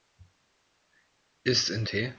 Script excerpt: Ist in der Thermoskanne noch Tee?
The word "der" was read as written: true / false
false